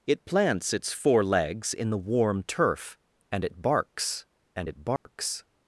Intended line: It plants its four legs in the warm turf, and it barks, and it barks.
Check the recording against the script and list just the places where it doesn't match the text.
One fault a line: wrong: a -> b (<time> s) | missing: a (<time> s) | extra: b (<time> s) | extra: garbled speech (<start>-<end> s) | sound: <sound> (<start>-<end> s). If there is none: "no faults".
sound: dropout (5.0-5.1 s)